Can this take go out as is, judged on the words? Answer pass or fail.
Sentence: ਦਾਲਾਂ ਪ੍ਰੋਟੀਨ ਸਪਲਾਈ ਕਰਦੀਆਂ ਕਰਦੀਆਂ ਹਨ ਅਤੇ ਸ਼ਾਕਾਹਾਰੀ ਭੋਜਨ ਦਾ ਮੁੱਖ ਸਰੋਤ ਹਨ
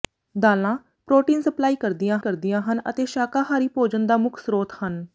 pass